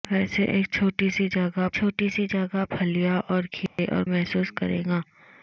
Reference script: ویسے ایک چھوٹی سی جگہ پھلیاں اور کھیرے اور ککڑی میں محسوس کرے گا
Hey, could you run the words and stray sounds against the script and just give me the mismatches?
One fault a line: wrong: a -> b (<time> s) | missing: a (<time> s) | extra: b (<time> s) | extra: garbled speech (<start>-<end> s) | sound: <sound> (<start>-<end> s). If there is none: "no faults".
extra: چھوٹی سی جگہ (1.7 s)
sound: dropout (3.7-3.8 s)
missing: ککڑی میں (4.0 s)